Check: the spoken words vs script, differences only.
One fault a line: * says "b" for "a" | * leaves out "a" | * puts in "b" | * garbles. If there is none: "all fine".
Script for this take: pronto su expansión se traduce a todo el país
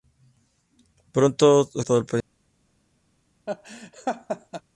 * leaves out "expansión se traduce"